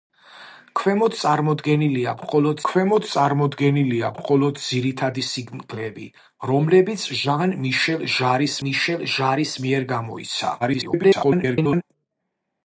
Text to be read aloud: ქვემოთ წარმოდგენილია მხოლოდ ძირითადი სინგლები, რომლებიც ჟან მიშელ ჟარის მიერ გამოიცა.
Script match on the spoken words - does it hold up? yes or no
no